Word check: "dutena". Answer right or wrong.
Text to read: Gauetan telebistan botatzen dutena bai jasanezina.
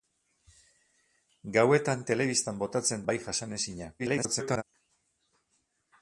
wrong